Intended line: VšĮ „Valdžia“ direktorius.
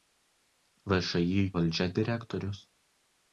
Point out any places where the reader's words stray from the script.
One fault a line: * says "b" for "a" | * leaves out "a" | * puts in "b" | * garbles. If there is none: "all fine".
all fine